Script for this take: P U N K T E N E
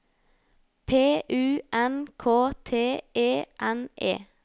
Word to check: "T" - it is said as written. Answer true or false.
true